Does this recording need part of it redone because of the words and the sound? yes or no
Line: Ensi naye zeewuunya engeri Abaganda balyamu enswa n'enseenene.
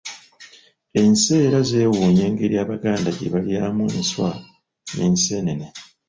yes